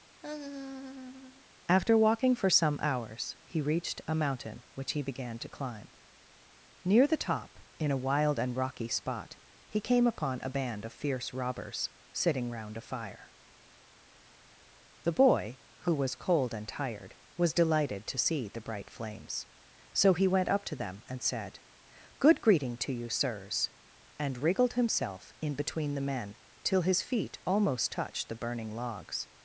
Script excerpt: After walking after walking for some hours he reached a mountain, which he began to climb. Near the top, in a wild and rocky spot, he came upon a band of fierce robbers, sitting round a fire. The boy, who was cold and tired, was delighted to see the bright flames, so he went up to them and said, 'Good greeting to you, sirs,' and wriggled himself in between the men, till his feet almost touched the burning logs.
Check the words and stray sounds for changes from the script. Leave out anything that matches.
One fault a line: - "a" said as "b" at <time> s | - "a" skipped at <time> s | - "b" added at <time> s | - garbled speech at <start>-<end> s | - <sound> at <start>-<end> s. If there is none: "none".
- laugh at 0.2-1.5 s
- "after walking" skipped at 2.3 s